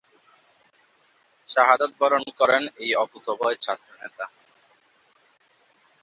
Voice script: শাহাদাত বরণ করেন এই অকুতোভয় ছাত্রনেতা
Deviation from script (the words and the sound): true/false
false